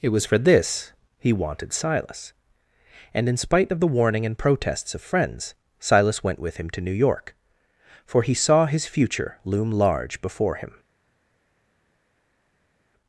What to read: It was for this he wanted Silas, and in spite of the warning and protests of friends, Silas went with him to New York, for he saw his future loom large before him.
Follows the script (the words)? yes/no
yes